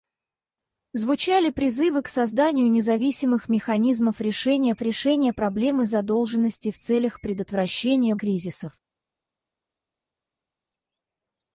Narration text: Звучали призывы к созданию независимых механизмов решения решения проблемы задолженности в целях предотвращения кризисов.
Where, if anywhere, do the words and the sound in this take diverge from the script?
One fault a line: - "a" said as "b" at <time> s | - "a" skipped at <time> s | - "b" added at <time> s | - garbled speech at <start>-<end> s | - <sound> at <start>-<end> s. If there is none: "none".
none